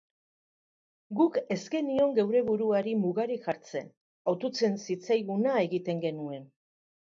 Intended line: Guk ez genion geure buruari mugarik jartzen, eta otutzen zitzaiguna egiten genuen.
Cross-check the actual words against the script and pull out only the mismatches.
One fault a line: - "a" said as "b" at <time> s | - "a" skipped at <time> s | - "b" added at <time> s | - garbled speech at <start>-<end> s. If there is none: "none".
- "eta" skipped at 3.9 s